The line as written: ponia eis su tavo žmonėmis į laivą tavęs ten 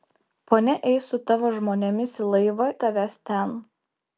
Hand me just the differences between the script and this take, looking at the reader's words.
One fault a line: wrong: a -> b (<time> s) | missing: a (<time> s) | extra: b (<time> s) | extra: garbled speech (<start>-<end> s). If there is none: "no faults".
no faults